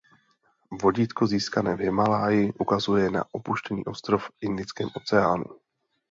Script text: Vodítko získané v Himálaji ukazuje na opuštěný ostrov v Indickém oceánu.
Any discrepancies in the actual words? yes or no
no